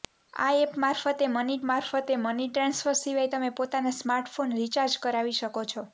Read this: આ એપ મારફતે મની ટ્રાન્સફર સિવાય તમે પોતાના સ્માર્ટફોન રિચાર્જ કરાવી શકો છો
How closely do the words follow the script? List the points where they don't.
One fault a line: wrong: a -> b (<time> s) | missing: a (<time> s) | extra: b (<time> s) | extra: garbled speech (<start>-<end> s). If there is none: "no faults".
extra: મારફતે મની (1.7 s)